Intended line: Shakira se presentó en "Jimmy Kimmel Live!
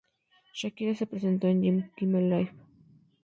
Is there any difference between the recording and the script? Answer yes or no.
no